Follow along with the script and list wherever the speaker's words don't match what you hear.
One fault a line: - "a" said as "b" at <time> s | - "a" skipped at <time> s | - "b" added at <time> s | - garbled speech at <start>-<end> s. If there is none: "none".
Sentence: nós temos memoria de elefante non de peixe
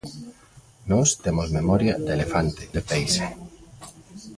- "non" skipped at 2.6 s